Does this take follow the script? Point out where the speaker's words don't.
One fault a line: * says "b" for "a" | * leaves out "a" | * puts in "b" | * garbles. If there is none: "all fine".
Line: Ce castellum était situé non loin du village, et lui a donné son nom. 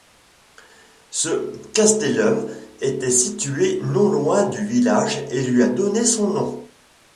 all fine